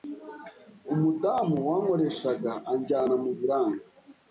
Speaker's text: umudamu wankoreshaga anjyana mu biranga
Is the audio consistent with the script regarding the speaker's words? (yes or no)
yes